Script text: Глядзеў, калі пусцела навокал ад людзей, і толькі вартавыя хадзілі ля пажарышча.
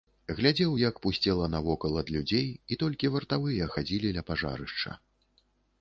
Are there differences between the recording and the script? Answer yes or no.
yes